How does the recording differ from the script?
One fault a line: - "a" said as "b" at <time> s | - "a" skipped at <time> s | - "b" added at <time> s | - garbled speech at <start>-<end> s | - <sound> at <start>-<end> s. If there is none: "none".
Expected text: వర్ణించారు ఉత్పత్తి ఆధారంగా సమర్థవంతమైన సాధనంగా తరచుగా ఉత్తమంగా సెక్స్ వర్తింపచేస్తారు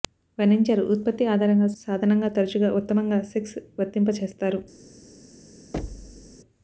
- "సమర్థవంతమైన" skipped at 1.7 s
- thud at 5.7-6.4 s